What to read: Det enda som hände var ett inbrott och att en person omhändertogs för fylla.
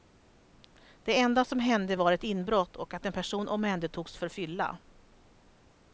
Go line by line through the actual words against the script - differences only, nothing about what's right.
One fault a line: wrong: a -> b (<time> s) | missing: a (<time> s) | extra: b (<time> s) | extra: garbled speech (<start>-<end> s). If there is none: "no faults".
no faults